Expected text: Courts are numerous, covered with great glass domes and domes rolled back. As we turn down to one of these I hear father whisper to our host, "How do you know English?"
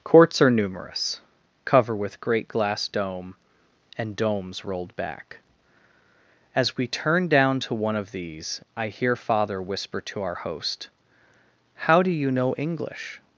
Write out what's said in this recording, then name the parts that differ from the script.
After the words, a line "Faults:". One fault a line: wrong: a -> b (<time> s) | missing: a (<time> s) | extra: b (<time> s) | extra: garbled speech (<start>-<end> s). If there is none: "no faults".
Courts are numerous, cover with great glass dome and domes rolled back. As we turn down to one of these I hear father whisper to our host, "How do you know English?"
Faults:
wrong: covered -> cover (1.6 s)
wrong: domes -> dome (2.9 s)